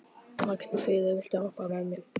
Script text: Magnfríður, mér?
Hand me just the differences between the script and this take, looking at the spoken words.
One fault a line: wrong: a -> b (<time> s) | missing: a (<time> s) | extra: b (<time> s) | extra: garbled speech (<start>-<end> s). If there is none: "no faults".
extra: viltu hoppa með (1.2 s)